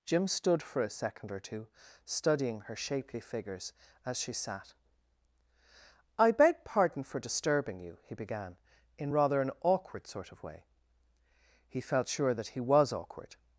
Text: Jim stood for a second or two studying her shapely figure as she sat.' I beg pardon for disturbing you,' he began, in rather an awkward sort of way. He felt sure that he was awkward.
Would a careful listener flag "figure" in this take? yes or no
yes